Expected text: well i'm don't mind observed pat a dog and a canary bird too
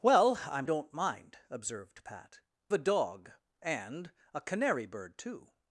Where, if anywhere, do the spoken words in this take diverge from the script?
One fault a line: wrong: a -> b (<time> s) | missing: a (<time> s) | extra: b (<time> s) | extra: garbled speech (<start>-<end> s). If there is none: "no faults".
no faults